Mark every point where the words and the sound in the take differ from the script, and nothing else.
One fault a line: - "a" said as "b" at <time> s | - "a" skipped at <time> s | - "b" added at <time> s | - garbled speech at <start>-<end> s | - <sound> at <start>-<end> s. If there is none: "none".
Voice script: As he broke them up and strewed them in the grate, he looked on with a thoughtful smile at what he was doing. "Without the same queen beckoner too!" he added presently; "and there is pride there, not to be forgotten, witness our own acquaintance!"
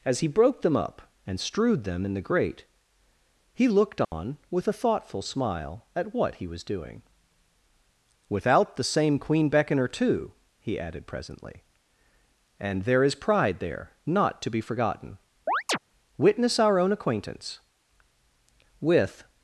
- dropout at 4.0-4.1 s
- chirp at 15.5-15.8 s
- "With" added at 18.8 s